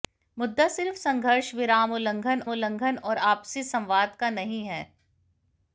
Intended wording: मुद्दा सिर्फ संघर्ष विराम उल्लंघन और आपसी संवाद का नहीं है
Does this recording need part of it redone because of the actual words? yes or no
yes